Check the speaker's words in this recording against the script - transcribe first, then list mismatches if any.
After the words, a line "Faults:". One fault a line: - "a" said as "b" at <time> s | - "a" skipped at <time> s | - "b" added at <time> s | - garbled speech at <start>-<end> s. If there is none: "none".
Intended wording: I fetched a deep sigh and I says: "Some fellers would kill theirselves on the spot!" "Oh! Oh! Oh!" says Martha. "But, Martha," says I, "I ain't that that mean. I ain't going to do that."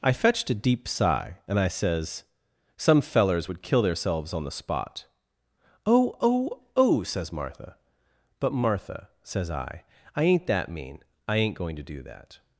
I fetched a deep sigh and I says: "Some fellers would kill theirselves on the spot!" "Oh! Oh! Oh!" says Martha. "But, Martha," says I, "I ain't that mean. I ain't going to do that."
Faults:
- "that" skipped at 10.7 s